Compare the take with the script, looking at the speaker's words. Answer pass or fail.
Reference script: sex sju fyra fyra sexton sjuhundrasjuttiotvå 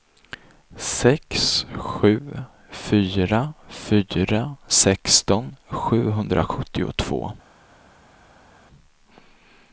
pass